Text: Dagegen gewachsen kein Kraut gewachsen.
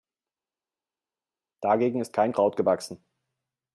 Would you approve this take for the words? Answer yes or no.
no